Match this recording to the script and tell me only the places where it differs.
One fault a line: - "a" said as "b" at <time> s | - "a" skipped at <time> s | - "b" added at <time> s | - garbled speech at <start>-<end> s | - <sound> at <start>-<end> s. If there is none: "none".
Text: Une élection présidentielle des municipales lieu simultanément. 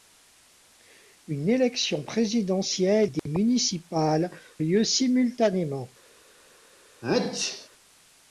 - dropout at 3.2-3.3 s
- sneeze at 7.0-7.7 s